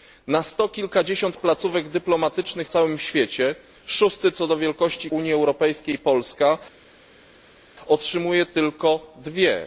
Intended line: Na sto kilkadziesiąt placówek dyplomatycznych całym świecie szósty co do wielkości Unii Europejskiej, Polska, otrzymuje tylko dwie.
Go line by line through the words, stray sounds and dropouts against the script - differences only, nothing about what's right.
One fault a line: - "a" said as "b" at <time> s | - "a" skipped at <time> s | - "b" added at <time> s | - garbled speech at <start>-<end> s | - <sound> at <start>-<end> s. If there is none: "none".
none